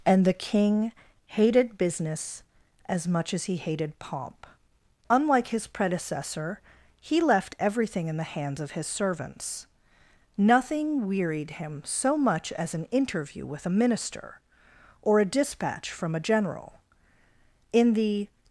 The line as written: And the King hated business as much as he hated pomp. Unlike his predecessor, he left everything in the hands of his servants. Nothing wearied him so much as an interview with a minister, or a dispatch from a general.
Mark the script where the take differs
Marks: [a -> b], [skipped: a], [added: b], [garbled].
And the King hated business as much as he hated pomp. Unlike his predecessor, he left everything in the hands of his servants. Nothing wearied him so much as an interview with a minister, or a dispatch from a general. [added: In the]